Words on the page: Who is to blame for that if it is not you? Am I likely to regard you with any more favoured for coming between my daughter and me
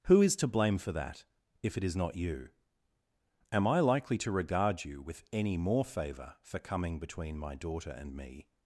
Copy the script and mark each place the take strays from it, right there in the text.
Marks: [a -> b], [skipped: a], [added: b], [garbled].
Who is to blame for that if it is not you? Am I likely to regard you with any more [favoured -> favour] for coming between my daughter and me